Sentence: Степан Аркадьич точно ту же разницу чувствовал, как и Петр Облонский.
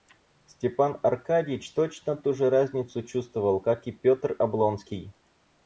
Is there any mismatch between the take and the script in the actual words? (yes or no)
no